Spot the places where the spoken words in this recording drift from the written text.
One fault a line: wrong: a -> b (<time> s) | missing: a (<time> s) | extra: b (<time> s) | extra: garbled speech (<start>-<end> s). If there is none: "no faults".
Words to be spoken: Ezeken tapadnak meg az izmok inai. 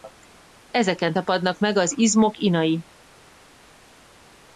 no faults